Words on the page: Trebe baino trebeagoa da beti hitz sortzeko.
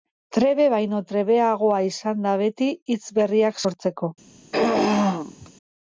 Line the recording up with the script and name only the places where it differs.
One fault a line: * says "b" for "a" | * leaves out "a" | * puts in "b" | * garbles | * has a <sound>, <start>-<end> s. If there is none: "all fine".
* puts in "izan"
* puts in "berriak"
* has a throat clearing, 4.5-5.5 s